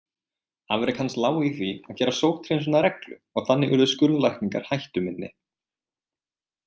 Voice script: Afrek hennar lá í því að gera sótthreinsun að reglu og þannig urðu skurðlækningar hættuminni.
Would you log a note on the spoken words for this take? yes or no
yes